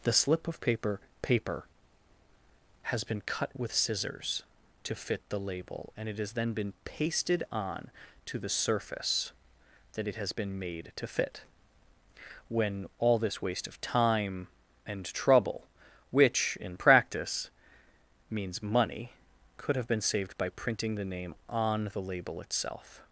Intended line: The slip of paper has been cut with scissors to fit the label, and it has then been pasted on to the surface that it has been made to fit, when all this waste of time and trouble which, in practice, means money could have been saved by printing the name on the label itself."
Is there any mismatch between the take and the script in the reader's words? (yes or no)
yes